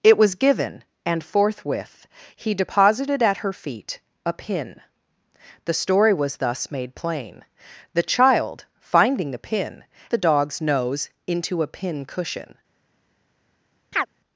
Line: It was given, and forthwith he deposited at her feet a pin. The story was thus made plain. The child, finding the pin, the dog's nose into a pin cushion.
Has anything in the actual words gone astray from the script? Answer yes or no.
no